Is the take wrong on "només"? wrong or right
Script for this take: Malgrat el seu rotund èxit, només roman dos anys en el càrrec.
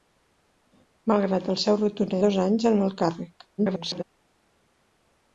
wrong